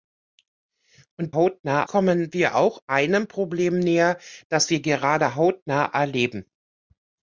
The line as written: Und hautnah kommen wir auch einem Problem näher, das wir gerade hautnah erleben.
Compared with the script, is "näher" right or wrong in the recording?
right